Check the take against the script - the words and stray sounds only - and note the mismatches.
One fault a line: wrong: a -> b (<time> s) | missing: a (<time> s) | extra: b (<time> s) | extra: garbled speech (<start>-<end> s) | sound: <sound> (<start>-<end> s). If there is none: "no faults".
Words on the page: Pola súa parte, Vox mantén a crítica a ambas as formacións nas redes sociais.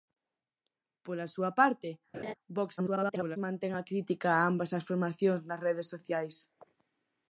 sound: laugh (2.1-2.3 s)
extra: garbled speech (2.8-3.4 s)